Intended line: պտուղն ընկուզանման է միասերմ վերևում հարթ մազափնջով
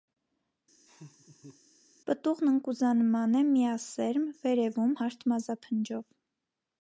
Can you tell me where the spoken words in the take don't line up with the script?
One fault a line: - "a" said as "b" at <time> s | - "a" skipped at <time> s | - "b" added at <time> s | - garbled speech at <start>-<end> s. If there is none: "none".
none